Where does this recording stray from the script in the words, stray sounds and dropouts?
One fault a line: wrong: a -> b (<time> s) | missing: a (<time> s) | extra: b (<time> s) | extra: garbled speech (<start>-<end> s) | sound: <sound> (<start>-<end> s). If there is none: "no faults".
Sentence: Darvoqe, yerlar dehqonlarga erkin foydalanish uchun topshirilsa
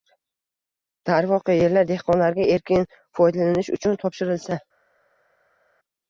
no faults